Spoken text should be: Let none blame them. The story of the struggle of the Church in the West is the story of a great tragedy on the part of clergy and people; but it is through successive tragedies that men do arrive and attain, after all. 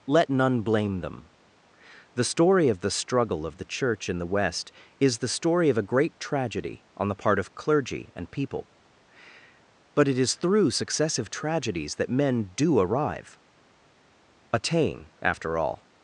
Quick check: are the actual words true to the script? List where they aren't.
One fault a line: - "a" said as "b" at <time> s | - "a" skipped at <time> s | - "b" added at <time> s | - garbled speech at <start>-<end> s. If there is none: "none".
- "and" skipped at 13.4 s